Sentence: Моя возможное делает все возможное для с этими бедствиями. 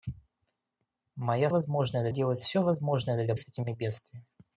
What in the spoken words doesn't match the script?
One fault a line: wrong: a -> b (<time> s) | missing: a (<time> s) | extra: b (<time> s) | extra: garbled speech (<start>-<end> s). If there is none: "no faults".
no faults